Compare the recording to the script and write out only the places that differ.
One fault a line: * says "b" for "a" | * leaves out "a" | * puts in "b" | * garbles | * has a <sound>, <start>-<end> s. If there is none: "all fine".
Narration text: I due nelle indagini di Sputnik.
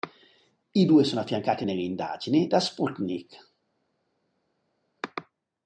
* puts in "sono affiancati"
* says "da" for "di"